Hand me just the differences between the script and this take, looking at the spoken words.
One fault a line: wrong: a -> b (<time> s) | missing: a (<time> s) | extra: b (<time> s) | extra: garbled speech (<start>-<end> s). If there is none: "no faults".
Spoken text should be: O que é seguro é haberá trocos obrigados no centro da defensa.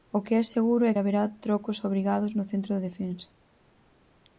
no faults